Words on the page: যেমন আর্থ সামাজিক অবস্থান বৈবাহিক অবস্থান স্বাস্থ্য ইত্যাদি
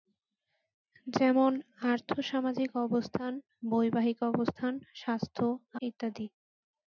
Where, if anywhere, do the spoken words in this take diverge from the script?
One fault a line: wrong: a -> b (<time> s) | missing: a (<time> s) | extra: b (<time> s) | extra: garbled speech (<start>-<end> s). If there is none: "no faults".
no faults